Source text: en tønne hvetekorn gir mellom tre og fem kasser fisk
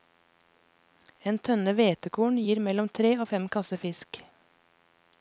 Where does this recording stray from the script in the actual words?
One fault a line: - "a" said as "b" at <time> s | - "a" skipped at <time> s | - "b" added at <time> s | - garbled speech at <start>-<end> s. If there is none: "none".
none